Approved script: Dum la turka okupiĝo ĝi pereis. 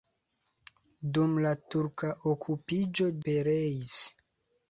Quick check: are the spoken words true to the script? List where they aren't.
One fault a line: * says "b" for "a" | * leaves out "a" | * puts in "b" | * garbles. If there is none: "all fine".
* leaves out "ĝi"